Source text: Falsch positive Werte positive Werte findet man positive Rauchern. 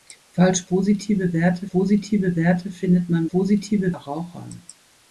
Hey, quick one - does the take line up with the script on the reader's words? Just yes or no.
yes